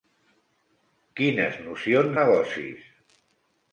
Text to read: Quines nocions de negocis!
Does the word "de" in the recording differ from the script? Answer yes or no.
yes